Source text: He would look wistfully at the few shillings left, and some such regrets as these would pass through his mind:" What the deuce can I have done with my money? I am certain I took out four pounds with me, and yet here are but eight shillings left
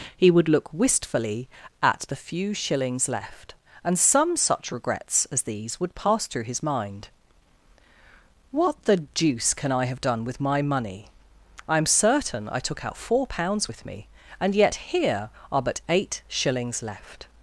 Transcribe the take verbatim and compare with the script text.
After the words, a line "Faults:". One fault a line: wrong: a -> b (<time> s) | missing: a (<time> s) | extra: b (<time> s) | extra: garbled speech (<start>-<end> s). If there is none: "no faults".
He would look wistfully at the few shillings left, and some such regrets as these would pass through his mind:" What the deuce can I have done with my money? I am certain I took out four pounds with me, and yet here are but eight shillings left
Faults:
no faults